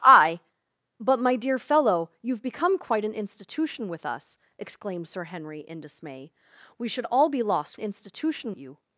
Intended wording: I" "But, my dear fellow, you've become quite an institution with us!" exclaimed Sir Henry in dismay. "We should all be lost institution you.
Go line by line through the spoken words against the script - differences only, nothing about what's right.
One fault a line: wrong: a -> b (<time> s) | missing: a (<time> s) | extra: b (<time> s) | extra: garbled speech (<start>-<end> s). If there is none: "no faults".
no faults